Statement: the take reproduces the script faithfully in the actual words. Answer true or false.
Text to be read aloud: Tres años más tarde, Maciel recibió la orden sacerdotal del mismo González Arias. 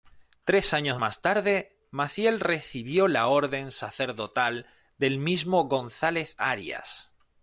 true